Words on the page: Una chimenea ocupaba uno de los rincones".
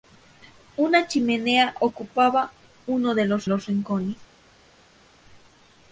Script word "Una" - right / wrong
right